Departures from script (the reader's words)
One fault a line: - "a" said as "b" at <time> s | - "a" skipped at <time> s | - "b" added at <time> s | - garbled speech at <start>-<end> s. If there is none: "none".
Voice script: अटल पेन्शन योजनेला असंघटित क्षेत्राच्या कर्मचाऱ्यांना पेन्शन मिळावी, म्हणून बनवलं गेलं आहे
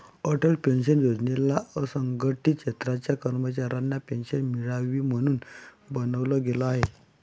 none